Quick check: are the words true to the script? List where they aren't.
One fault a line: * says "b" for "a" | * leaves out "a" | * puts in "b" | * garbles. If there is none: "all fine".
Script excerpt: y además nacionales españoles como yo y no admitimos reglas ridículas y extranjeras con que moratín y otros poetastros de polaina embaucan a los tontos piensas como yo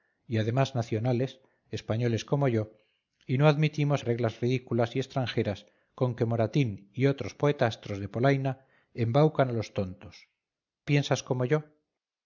all fine